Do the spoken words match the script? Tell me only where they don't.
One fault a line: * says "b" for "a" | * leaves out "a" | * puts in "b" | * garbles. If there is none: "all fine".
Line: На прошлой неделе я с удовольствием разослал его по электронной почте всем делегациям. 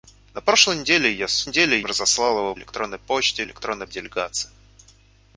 * says "неделе" for "удовольствием"
* leaves out "по"
* says "электронной" for "всем"